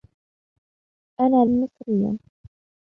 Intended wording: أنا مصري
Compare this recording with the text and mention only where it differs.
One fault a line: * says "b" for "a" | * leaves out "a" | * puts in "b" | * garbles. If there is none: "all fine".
all fine